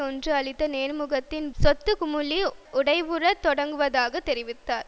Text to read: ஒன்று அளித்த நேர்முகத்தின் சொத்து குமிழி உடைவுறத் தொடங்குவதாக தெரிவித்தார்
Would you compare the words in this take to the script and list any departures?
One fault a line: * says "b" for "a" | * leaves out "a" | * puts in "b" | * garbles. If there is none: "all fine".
all fine